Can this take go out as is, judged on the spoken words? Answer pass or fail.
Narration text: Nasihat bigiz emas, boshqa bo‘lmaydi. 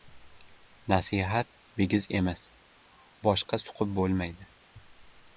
fail